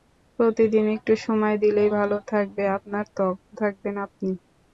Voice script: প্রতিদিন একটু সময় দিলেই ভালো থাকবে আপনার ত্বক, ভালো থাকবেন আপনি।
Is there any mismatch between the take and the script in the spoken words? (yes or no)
yes